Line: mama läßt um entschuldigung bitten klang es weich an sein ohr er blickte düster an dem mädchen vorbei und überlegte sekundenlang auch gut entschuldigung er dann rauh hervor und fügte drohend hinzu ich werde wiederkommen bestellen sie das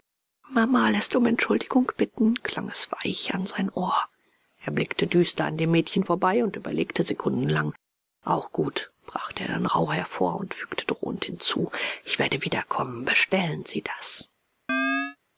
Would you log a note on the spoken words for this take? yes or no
yes